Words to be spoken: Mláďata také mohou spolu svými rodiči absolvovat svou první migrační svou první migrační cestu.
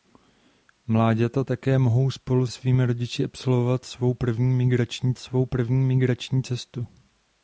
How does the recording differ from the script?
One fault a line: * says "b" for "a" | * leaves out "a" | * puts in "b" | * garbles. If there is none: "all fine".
all fine